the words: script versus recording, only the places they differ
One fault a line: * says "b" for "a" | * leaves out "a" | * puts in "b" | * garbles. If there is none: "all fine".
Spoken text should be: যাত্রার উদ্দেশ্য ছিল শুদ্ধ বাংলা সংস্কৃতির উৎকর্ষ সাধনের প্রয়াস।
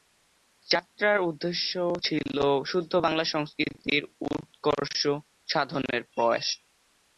all fine